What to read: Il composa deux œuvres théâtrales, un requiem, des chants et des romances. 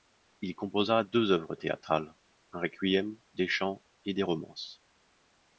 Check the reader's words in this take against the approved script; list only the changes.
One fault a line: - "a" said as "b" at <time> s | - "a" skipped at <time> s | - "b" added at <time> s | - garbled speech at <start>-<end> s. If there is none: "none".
none